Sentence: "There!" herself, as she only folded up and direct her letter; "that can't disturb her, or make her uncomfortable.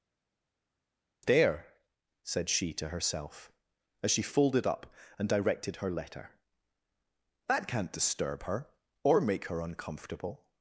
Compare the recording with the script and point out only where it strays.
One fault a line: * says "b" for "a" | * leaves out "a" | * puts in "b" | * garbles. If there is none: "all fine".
* puts in "said she to"
* leaves out "only"
* says "directed" for "direct"